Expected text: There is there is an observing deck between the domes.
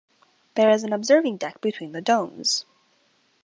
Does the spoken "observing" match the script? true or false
true